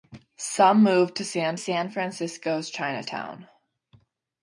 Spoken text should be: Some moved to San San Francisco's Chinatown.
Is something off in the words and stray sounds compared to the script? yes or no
no